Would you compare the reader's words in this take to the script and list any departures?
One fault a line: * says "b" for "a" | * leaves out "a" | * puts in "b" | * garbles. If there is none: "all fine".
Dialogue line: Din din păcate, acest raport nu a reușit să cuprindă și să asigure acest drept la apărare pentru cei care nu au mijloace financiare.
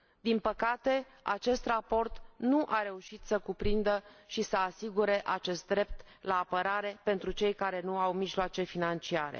* leaves out "din"